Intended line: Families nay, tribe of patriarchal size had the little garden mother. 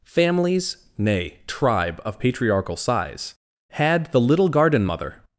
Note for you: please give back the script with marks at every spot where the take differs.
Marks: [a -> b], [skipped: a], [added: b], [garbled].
Families nay, tribe of patriarchal size had the little garden mother.